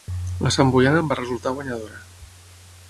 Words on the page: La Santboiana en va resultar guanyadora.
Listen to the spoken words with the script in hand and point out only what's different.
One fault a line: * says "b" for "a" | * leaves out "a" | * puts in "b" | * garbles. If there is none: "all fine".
all fine